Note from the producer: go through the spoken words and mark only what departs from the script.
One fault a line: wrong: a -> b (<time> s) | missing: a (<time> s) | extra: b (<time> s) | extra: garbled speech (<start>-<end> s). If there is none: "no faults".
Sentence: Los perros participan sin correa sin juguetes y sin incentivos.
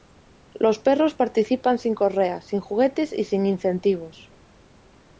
no faults